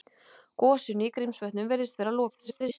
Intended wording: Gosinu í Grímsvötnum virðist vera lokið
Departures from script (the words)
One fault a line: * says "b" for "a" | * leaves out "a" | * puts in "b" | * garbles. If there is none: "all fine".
* garbles